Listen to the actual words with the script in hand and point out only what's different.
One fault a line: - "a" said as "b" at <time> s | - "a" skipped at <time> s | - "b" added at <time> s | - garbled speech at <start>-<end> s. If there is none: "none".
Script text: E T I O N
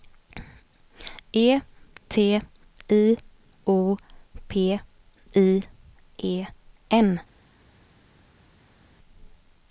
- "P I E" added at 4.5 s